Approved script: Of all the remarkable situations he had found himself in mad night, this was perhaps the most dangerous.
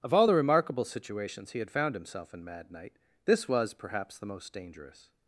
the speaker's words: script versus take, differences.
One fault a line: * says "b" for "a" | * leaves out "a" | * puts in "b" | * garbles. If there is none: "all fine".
all fine